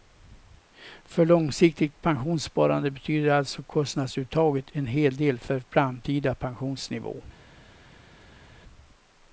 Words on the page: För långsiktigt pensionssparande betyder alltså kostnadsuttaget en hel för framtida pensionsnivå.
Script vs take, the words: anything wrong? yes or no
yes